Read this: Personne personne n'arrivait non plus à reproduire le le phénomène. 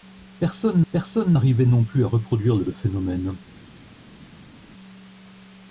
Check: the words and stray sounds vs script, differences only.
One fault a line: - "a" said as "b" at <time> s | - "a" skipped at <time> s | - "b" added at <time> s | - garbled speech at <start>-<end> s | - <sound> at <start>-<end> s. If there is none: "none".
none